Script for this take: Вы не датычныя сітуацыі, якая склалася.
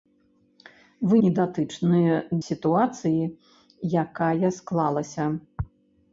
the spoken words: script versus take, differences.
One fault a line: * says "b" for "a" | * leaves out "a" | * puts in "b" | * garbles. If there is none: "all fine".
all fine